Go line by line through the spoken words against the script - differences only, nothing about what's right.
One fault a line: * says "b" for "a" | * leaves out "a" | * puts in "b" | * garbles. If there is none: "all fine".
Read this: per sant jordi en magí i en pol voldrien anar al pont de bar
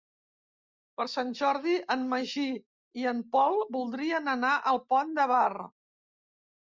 all fine